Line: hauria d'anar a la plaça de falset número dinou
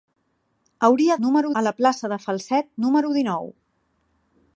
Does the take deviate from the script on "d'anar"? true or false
true